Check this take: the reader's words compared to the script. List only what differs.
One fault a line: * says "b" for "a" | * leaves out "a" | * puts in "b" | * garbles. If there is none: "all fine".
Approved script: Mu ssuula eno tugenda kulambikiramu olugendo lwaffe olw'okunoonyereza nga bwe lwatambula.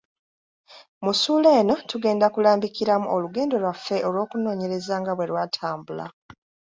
all fine